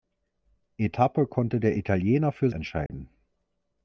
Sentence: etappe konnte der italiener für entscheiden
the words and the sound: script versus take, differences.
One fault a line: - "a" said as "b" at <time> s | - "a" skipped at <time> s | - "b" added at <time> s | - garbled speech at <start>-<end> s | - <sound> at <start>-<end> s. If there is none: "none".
- dropout at 2.9-2.9 s